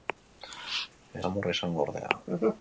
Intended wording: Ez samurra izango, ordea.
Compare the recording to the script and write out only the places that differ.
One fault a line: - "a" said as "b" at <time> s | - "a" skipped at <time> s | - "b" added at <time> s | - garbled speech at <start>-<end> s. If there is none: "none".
none